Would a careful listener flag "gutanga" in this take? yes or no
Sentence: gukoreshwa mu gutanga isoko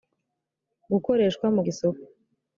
yes